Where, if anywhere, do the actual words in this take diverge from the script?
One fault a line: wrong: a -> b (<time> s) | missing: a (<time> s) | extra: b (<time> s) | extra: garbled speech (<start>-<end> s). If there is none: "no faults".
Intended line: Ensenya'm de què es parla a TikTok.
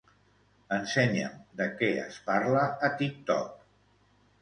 no faults